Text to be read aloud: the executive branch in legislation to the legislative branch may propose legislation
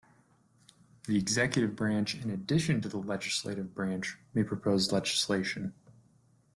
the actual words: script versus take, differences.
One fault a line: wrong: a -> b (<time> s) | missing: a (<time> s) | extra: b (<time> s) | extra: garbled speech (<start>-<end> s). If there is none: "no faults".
wrong: legislation -> addition (2.3 s)